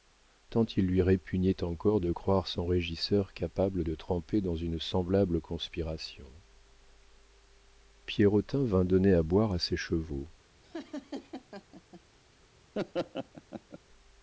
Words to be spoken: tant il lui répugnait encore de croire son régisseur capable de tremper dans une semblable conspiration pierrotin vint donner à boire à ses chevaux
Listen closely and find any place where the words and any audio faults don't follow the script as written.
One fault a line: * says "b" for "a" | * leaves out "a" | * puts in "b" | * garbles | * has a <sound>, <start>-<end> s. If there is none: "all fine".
* has a laugh, 10.6-12.0 s
* has a laugh, 12.7-13.8 s